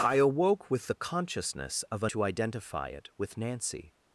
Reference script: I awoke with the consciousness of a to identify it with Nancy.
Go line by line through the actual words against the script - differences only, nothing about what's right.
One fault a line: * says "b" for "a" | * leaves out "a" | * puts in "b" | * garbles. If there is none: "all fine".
all fine